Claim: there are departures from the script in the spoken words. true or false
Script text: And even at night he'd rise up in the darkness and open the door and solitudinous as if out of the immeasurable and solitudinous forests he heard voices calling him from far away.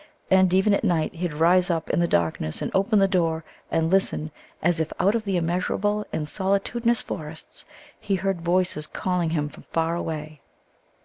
true